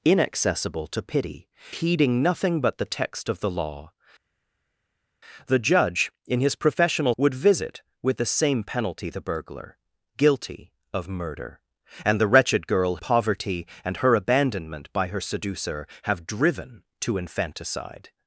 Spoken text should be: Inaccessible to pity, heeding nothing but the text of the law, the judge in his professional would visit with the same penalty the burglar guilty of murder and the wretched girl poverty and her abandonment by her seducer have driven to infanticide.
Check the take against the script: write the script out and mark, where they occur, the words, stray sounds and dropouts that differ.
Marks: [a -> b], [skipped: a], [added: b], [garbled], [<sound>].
Inaccessible to pity, heeding nothing but the text of the law, the judge in his professional would visit with the same penalty the burglar guilty of murder and the wretched girl poverty and her abandonment by her seducer have driven to infanticide.